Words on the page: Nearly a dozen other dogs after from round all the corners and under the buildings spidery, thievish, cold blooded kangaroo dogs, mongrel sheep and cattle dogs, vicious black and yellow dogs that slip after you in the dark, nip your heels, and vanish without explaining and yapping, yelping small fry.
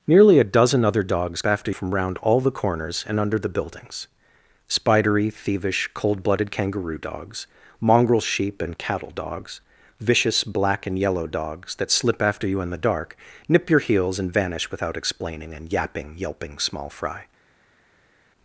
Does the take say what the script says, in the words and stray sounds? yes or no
yes